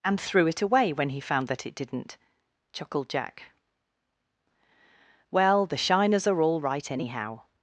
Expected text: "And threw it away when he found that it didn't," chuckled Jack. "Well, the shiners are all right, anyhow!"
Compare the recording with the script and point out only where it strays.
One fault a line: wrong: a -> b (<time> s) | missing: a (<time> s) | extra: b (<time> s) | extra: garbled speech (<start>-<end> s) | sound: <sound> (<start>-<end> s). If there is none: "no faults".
no faults